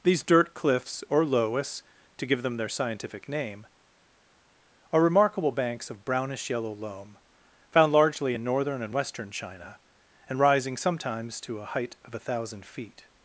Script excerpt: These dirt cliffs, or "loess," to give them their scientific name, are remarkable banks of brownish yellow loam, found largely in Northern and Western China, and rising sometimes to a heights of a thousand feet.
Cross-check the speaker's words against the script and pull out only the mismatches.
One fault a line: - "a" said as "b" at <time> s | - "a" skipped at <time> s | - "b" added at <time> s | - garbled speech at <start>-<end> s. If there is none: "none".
- "heights" said as "height" at 11.6 s